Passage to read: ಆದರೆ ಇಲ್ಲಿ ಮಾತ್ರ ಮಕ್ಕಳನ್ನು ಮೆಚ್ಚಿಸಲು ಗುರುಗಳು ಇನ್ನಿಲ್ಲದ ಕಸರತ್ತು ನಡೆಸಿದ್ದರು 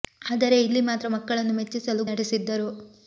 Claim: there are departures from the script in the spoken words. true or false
true